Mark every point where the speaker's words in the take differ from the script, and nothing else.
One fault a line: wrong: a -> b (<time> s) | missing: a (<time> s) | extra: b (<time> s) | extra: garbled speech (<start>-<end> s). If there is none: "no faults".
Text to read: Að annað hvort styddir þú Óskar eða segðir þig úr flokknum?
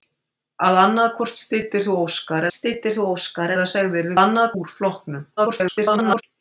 extra: styddir þú Óskar (2.5 s)
wrong: þig -> annað (4.2 s)
extra: garbled speech (5.4-6.2 s)